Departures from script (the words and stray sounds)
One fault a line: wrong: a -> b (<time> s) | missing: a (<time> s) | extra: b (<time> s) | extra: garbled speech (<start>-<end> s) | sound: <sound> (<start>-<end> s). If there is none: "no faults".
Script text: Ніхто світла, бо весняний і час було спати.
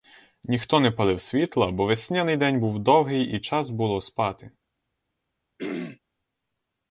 extra: не палив (0.8 s)
extra: день був довгий (2.4 s)
sound: throat clearing (5.6-6.0 s)